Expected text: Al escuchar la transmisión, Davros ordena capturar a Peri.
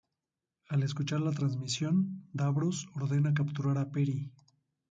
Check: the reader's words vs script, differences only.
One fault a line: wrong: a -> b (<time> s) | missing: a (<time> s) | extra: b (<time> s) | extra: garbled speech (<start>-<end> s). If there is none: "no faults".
no faults